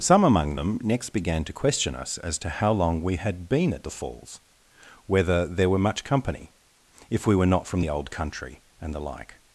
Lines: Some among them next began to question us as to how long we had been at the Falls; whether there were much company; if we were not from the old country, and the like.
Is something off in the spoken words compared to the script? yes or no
no